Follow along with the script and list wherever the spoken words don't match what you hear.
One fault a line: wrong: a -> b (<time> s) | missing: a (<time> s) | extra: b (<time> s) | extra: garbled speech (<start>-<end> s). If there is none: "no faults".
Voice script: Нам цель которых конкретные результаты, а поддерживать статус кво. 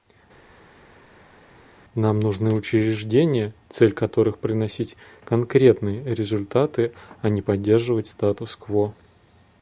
extra: нужны учреждения (2.2 s)
extra: приносить (4.4 s)
extra: не (7.3 s)